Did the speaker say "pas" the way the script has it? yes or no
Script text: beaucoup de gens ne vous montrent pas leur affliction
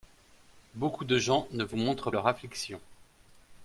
no